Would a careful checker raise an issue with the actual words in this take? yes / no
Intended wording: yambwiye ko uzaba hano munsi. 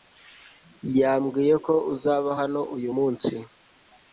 yes